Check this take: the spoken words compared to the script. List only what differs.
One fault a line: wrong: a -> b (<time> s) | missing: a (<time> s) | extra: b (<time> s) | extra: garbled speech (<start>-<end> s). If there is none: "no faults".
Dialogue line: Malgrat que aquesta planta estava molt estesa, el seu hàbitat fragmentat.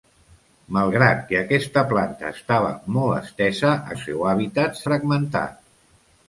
no faults